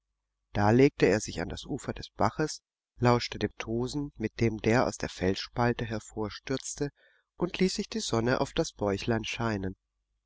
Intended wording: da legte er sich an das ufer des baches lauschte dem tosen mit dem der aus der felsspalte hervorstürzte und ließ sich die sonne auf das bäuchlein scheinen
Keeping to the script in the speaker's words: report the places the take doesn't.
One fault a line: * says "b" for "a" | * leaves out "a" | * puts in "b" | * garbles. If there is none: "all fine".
all fine